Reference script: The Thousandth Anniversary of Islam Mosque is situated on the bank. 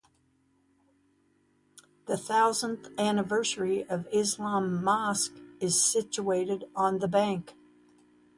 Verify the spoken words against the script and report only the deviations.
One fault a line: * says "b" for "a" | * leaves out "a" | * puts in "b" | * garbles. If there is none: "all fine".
all fine